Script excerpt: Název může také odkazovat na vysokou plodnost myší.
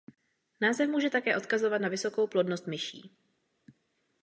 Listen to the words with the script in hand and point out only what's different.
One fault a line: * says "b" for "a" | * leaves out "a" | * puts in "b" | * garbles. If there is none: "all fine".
all fine